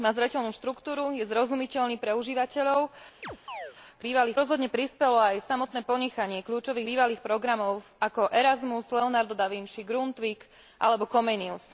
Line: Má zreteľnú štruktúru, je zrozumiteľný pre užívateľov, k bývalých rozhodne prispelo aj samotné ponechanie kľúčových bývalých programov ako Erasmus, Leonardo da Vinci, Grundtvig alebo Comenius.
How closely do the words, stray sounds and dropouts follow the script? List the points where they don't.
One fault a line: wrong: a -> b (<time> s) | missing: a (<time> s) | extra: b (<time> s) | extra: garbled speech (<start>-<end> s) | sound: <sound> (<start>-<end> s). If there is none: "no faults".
sound: chirp (3.2-3.8 s)